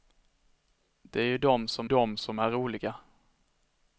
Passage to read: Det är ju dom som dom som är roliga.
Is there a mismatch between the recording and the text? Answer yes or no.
no